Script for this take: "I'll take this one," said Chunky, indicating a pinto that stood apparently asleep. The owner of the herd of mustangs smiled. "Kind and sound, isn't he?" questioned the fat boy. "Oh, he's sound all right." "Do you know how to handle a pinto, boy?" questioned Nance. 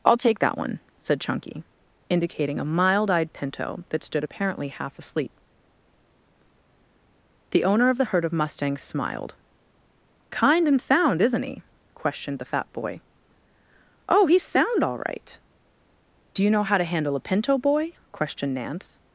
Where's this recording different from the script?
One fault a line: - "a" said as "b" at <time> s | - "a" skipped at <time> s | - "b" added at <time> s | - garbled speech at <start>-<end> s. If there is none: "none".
- "this" said as "that" at 0.4 s
- "mild eyed" added at 2.6 s
- "half" added at 4.7 s